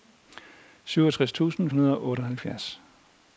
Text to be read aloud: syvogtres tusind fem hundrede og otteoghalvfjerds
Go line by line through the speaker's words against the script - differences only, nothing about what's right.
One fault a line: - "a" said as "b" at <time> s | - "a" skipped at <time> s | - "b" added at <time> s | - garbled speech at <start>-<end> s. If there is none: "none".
- "fem" skipped at 1.7 s